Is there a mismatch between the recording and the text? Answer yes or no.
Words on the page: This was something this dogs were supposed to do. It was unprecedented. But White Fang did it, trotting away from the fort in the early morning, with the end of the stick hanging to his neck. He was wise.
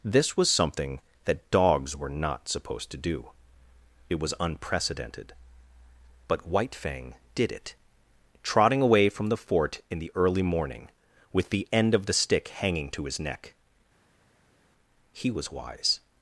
yes